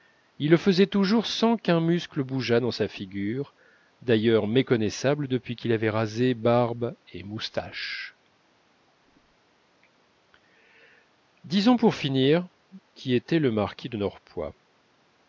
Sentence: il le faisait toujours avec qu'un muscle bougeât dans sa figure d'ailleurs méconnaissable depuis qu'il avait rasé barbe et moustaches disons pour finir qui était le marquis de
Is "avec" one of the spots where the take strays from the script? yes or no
yes